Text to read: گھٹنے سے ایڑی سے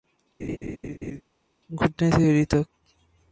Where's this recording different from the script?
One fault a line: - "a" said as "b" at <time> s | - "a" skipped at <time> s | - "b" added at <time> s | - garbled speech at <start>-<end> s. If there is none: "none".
- "سے" said as "تک" at 2.5 s